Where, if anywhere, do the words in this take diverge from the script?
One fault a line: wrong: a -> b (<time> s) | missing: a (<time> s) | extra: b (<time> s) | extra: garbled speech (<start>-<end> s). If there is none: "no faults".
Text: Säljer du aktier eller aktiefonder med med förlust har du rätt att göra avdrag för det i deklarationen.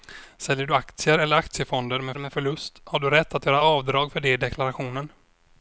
no faults